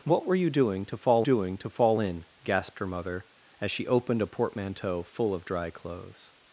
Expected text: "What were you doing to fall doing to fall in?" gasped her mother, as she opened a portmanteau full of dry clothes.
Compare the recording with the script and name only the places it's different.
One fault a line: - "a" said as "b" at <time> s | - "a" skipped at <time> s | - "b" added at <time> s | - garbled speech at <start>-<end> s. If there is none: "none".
none